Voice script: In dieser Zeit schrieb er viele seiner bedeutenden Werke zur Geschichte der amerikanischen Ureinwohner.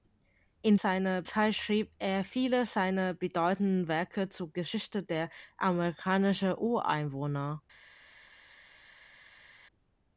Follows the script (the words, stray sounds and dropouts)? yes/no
no